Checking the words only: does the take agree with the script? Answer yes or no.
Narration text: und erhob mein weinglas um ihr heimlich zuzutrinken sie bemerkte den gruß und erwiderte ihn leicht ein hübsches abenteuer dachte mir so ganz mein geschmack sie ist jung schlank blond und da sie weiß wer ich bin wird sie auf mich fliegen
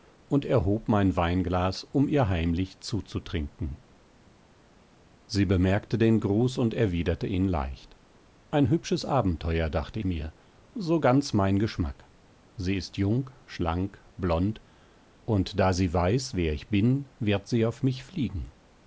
yes